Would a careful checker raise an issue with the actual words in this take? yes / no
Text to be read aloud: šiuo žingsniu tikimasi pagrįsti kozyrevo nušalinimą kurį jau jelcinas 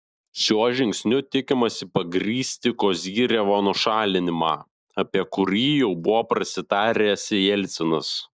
yes